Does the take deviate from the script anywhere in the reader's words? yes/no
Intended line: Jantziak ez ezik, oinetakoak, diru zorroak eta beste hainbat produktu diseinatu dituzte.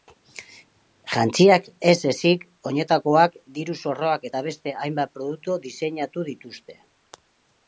no